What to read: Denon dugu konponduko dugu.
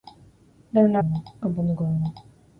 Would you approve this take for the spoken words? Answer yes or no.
yes